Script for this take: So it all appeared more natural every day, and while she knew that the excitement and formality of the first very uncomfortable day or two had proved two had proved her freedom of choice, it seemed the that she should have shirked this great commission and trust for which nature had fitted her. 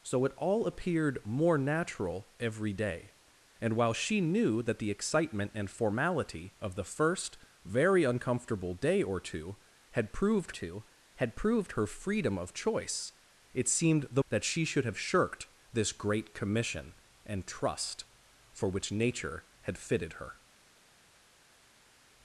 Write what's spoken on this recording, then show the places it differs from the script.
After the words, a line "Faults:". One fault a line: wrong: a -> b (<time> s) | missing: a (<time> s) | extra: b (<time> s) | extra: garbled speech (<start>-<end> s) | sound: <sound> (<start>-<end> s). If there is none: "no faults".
So it all appeared more natural every day, and while she knew that the excitement and formality of the first very uncomfortable day or two had proved two had proved her freedom of choice, it seemed the that she should have shirked this great commission and trust for which nature had fitted her.
Faults:
no faults